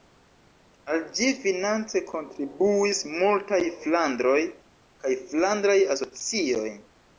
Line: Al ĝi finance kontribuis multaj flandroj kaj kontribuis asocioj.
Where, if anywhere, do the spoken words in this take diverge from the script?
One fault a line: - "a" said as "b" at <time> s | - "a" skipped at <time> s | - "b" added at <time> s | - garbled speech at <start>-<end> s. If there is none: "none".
- "kontribuis" said as "flandraj" at 5.3 s